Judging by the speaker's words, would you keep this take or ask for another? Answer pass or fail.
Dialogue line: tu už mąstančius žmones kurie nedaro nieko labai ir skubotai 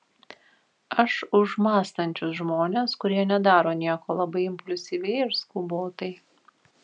fail